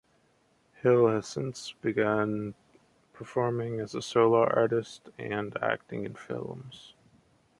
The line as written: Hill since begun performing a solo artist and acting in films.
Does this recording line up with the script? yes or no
no